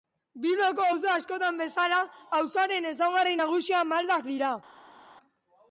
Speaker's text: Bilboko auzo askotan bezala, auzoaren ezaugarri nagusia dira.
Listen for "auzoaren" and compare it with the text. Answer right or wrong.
right